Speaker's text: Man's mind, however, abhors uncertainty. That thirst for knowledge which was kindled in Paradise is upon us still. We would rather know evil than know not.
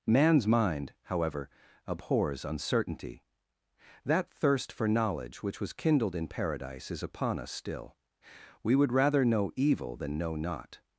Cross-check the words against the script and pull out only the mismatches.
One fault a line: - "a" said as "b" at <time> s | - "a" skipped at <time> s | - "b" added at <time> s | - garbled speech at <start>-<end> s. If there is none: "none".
none